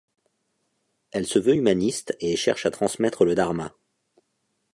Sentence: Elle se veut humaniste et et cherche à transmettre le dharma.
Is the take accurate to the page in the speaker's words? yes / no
no